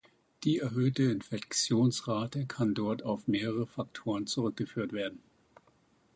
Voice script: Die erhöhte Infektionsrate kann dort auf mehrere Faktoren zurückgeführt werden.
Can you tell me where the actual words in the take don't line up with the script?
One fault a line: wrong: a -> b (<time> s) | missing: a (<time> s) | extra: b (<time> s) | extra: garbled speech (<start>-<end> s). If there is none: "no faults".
no faults